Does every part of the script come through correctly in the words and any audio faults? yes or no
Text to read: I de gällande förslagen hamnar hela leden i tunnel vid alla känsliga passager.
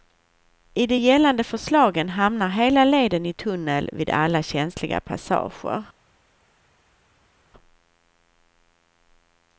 yes